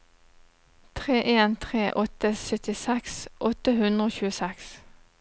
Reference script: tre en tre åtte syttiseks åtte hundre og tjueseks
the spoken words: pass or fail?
pass